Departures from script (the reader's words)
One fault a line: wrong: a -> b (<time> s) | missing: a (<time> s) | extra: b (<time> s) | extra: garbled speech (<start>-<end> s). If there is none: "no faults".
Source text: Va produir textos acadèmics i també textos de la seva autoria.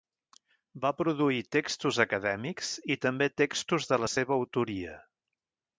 no faults